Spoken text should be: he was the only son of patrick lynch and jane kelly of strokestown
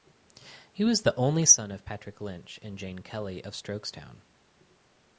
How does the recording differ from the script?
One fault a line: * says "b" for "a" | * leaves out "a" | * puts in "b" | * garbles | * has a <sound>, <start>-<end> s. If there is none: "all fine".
all fine